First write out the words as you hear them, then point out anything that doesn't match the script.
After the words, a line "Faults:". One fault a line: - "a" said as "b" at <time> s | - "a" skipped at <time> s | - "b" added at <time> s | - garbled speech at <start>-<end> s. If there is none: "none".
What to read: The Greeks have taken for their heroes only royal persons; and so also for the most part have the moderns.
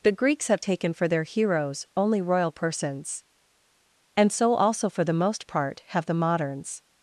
The Greeks have taken for their heroes only royal persons; and so also for the most part have the moderns.
Faults:
none